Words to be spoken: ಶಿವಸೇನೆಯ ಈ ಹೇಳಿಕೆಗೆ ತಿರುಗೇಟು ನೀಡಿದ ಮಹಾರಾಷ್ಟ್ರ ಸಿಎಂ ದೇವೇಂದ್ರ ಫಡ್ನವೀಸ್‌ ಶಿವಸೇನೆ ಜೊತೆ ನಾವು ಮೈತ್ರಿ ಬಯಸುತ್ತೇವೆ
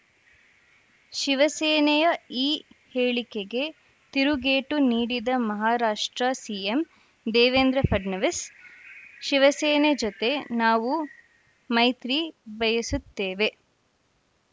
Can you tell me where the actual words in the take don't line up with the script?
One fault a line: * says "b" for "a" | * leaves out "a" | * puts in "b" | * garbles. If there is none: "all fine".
all fine